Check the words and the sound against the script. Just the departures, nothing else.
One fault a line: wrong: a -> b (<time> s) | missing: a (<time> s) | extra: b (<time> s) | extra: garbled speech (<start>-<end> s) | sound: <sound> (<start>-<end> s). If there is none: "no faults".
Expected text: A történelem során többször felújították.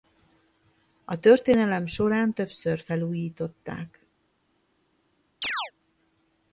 sound: chirp (5.4-5.7 s)